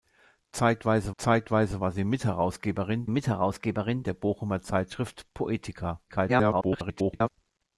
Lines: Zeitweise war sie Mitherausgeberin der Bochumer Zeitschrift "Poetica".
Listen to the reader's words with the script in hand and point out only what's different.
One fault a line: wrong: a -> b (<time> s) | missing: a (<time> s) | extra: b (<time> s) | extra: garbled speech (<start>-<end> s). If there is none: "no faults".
extra: zeitweise (1.2 s)
extra: Mitherausgeberin (3.1 s)
extra: garbled speech (6.1-7.3 s)